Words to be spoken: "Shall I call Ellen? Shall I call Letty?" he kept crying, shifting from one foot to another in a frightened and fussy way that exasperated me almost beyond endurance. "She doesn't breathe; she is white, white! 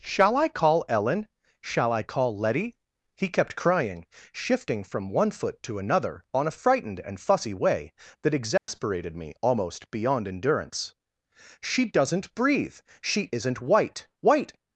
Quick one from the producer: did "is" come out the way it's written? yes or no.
no